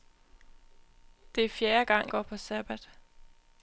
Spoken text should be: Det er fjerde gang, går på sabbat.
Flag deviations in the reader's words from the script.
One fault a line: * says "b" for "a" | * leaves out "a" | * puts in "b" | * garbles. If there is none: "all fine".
all fine